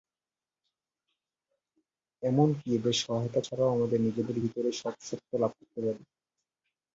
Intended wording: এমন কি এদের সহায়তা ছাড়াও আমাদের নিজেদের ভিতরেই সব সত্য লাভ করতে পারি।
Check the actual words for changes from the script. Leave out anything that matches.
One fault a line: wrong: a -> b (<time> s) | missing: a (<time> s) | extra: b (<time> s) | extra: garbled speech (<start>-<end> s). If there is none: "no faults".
no faults